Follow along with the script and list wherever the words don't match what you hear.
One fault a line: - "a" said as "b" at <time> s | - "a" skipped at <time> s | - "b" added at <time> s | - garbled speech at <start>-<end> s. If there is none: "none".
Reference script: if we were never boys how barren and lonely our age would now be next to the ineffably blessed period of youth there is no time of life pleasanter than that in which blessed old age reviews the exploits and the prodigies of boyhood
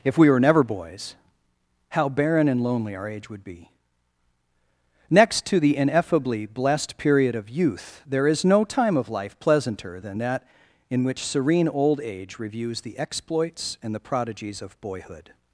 - "now" skipped at 3.4 s
- "blessed" said as "serene" at 11.2 s